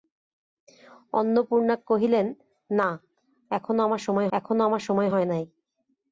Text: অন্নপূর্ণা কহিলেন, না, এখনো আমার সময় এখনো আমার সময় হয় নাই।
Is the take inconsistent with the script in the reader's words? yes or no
no